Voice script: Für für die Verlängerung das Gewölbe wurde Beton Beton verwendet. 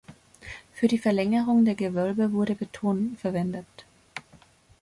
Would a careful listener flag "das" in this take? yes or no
yes